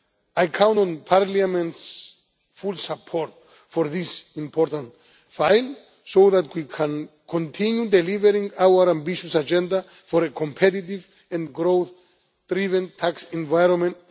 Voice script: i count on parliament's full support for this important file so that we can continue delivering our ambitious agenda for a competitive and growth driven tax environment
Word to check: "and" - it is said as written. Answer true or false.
true